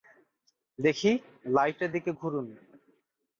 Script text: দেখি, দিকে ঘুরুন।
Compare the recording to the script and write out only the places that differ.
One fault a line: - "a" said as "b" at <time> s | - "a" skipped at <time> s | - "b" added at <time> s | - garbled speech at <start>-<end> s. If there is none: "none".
- "লাইটের" added at 1.5 s